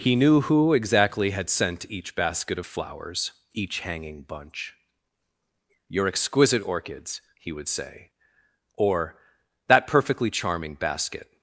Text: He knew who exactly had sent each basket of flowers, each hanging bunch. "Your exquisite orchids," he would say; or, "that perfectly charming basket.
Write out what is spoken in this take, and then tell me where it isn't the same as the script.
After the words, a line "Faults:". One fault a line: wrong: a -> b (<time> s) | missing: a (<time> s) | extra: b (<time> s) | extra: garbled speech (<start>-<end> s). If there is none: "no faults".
He knew who exactly had sent each basket of flowers, each hanging bunch. "Your exquisite orchids," he would say; or, "that perfectly charming basket.
Faults:
no faults